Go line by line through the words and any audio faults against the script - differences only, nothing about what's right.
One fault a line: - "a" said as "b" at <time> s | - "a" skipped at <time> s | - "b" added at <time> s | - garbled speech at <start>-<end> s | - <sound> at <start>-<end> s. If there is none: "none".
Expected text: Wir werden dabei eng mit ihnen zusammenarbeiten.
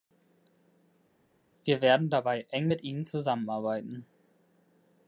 none